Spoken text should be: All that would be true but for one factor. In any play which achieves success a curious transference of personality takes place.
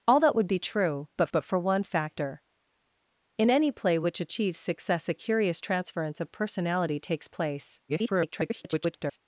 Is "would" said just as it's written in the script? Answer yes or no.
yes